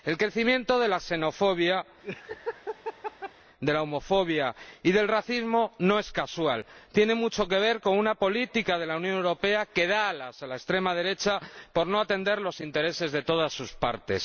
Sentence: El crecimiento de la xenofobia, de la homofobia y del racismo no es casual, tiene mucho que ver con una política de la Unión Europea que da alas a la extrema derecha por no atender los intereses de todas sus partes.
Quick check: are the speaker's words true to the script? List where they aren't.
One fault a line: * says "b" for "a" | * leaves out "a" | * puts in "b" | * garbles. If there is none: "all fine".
all fine